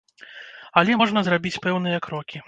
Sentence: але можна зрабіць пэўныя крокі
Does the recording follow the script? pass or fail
pass